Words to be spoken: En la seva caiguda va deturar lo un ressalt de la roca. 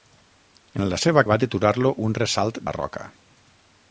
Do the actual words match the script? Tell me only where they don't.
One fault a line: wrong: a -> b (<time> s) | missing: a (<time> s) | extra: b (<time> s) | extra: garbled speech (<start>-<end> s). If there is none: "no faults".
missing: caiguda (1.2 s)
missing: de (2.6 s)